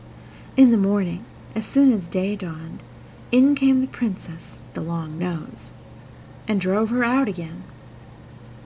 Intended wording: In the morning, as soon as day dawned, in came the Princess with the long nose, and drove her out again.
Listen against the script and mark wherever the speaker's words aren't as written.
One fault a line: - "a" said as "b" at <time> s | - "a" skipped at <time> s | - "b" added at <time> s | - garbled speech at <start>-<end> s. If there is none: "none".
none